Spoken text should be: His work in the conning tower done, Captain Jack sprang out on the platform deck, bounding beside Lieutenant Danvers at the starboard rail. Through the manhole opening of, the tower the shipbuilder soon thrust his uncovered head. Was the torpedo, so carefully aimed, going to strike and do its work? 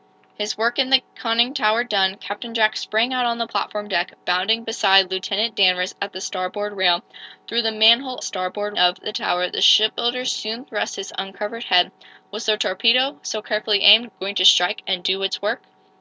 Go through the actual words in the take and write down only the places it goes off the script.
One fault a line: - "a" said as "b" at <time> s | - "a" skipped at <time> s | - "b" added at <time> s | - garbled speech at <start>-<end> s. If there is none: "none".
- "opening" said as "starboard" at 8.2 s